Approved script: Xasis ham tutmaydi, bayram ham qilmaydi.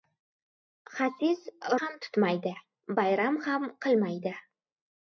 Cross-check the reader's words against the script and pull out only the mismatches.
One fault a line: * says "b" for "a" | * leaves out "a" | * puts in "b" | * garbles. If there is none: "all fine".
all fine